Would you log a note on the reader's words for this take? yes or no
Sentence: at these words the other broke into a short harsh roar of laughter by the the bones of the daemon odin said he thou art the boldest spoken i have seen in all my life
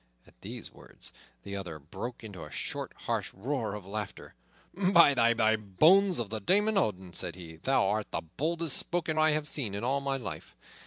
no